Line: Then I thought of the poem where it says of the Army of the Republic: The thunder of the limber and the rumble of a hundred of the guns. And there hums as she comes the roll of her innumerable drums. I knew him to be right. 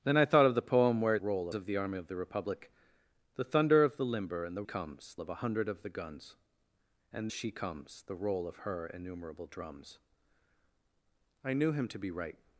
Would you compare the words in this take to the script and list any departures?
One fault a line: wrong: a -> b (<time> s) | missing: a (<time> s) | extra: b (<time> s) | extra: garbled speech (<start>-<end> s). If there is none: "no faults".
wrong: says -> roll (1.2 s)
wrong: rumble -> comes (4.6 s)
missing: there hums as (7.3 s)